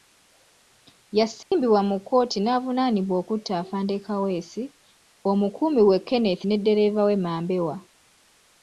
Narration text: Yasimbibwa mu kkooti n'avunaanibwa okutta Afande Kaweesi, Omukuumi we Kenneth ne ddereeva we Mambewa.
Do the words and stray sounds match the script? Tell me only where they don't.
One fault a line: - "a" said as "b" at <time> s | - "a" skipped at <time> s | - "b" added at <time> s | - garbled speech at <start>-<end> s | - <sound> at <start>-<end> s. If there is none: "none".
- dropout at 1.4-1.5 s